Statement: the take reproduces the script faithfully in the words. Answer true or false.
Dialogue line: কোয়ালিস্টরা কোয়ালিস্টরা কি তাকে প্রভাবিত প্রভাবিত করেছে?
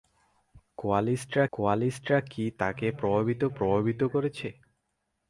true